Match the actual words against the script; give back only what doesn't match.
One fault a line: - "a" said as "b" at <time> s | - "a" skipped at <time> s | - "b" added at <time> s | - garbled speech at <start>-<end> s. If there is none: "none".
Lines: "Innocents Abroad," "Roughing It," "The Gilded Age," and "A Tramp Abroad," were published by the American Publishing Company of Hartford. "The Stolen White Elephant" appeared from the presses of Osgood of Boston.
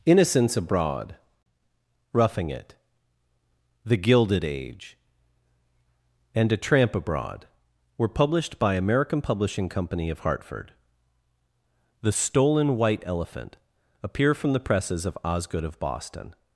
- "the" skipped at 8.7 s
- "appeared" said as "appear" at 14.0 s